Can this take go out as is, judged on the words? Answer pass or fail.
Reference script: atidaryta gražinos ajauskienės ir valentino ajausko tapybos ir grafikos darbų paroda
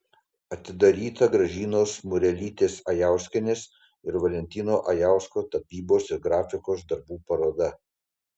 fail